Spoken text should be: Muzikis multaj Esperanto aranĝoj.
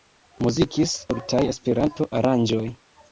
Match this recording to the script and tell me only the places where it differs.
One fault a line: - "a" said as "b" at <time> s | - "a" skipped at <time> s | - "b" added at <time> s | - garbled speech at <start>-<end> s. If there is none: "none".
none